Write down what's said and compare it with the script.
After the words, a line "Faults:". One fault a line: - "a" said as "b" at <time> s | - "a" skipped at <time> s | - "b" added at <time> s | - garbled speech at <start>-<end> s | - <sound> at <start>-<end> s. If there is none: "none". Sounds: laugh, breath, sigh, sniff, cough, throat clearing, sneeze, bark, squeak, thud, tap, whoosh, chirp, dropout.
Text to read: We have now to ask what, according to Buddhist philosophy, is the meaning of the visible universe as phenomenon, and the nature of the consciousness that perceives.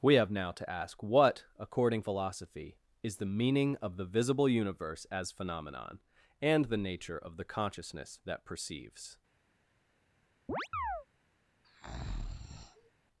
We have now to ask what, according philosophy, is the meaning of the visible universe as phenomenon, and the nature of the consciousness that perceives.
Faults:
- "to Buddhist" skipped at 2.0 s
- chirp at 10.5-11.1 s
- breath at 11.6-12.9 s